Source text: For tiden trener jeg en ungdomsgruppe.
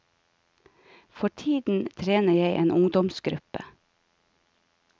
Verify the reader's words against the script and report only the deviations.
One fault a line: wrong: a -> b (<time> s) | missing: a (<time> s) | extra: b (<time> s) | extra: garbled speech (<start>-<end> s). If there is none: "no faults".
no faults